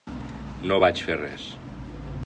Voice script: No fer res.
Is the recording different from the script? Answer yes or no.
yes